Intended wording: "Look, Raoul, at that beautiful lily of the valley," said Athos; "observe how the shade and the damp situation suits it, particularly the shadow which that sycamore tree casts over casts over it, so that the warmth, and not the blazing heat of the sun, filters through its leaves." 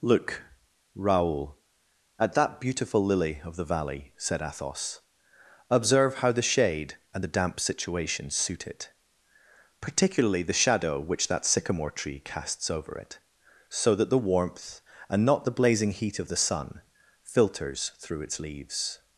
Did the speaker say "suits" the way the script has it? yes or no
no